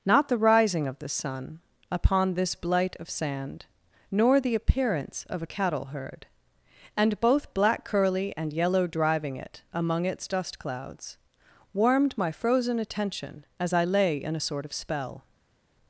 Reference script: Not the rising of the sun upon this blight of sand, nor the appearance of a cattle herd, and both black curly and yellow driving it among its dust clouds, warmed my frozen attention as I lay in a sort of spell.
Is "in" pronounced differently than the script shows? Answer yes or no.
no